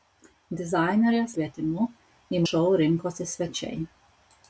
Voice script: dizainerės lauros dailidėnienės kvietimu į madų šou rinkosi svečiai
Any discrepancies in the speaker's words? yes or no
yes